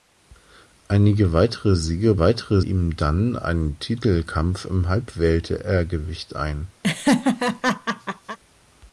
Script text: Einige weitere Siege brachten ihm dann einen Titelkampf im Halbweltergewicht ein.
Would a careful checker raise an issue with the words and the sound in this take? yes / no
yes